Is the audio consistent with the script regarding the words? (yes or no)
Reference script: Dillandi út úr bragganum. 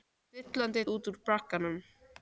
yes